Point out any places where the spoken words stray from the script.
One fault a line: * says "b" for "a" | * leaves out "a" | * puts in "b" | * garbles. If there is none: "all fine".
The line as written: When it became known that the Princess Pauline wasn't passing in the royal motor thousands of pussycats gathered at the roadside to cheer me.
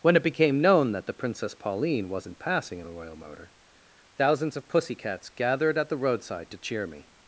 all fine